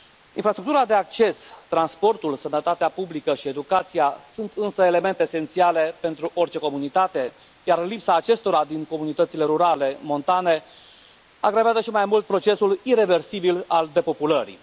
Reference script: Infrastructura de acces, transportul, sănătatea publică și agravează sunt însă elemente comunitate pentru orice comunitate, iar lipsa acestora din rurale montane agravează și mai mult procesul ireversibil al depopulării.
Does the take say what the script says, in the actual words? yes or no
no